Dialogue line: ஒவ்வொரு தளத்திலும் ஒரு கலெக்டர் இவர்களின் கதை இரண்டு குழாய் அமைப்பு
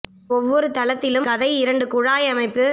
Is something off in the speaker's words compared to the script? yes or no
yes